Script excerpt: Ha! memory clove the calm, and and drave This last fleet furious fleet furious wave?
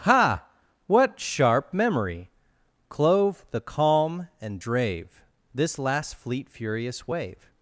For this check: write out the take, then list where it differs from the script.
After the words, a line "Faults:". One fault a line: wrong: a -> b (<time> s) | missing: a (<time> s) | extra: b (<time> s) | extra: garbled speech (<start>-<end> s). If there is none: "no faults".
Ha! what sharp memory clove the calm, and drave This last fleet furious wave?
Faults:
extra: what sharp (0.9 s)
missing: and (4.6 s)
missing: fleet furious (7.1 s)